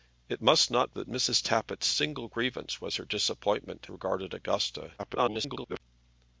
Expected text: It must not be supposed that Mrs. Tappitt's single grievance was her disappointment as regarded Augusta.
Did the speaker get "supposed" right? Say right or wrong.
wrong